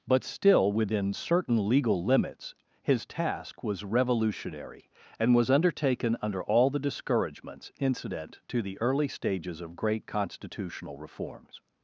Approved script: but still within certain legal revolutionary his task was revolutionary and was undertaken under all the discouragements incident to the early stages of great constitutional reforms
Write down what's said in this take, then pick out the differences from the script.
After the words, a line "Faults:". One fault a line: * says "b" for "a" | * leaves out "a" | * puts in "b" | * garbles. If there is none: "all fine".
but still within certain legal limits his task was revolutionary and was undertaken under all the discouragements incident to the early stages of great constitutional reforms
Faults:
* says "limits" for "revolutionary"